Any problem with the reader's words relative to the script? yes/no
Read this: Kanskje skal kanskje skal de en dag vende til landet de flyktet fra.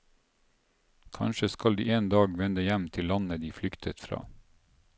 yes